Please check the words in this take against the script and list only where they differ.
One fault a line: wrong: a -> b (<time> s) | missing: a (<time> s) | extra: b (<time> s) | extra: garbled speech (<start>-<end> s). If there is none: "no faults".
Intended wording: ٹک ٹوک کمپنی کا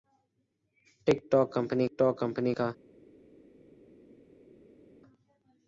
extra: ٹوک کمپنی (2.0 s)